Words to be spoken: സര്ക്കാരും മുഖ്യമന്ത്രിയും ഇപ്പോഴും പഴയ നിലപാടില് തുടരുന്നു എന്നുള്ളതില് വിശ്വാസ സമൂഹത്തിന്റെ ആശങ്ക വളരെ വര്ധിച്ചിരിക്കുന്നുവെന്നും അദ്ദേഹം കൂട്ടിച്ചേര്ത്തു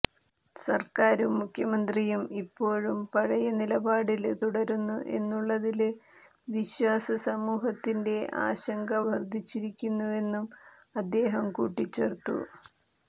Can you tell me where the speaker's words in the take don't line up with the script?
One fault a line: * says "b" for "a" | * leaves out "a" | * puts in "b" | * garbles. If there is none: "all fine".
* leaves out "വളരെ"